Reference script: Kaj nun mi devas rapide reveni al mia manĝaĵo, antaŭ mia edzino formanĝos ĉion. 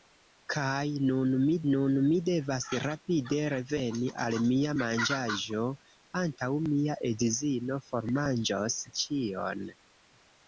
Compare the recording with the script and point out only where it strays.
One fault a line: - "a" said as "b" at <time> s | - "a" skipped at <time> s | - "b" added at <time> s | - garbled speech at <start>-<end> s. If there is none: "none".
- "nun mi" added at 1.7 s